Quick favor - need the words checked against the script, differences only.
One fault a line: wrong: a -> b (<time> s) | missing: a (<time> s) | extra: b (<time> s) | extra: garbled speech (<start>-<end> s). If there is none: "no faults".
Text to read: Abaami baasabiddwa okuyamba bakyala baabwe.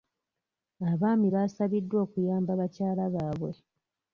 no faults